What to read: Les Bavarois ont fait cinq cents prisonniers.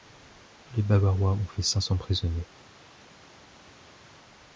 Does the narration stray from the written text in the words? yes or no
no